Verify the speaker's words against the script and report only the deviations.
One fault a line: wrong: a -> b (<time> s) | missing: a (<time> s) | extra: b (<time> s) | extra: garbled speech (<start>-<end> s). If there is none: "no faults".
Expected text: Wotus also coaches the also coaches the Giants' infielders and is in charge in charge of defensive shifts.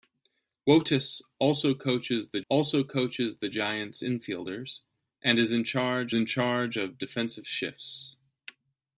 no faults